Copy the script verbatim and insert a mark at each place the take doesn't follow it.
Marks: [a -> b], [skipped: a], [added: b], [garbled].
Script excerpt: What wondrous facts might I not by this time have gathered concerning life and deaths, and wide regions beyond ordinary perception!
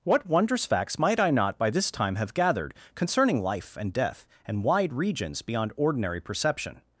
What wondrous facts might I not by this time have gathered concerning life and [deaths, -> death] and wide regions beyond ordinary perception!